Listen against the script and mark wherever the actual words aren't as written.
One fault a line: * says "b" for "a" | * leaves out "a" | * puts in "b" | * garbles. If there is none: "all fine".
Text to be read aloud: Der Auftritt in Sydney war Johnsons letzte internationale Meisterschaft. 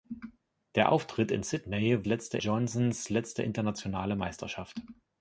* says "letzte" for "war"